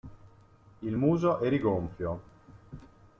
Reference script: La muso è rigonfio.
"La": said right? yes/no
no